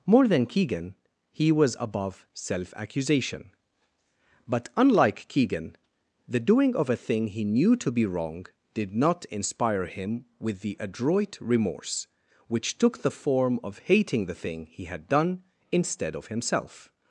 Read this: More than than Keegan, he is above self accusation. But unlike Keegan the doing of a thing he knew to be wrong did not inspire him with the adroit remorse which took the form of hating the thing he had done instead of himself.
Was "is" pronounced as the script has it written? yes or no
no